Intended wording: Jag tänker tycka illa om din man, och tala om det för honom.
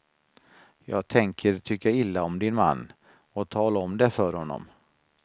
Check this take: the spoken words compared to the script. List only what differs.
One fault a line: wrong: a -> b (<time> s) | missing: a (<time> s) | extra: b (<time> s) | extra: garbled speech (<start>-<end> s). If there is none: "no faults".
no faults